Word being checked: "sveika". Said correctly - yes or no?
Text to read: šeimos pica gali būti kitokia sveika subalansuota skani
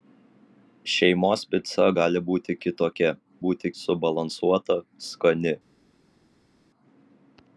no